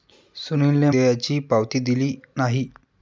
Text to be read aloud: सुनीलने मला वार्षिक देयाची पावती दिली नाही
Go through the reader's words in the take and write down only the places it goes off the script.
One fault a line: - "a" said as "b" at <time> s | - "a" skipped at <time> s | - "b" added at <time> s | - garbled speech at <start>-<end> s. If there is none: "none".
- "मला वार्षिक" skipped at 0.9 s